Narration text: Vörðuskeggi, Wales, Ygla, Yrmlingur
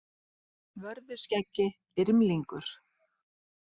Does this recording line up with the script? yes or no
no